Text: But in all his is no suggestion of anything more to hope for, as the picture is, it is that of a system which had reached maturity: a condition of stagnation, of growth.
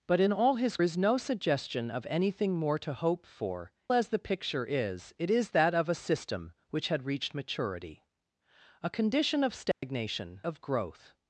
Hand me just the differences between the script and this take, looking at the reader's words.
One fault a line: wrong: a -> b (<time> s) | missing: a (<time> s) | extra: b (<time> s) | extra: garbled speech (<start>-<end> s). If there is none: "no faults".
no faults